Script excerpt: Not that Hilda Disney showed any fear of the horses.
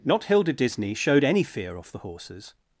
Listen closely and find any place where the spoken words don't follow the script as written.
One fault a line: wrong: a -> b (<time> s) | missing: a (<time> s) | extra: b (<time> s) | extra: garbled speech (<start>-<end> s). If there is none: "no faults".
missing: that (0.2 s)
wrong: of -> off (1.8 s)